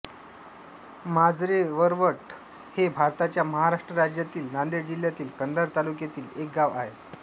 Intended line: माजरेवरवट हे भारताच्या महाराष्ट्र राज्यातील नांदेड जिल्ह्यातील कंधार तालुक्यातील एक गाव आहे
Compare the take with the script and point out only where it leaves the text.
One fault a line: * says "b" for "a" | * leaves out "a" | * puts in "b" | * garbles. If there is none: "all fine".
all fine